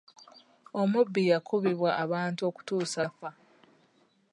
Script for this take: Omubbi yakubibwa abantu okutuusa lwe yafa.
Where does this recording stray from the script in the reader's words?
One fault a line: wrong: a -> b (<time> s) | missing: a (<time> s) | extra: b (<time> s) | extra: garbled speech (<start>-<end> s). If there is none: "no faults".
missing: lwe (3.0 s)